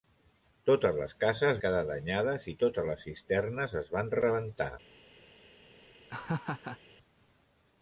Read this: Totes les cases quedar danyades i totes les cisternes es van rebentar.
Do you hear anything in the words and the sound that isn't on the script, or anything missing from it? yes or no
yes